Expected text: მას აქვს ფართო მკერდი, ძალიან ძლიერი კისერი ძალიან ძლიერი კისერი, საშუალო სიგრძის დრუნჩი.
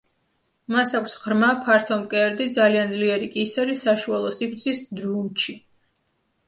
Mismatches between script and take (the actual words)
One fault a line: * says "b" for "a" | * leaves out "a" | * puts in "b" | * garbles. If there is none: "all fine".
* puts in "ღრმა"
* leaves out "ძალიან ძლიერი კისერი"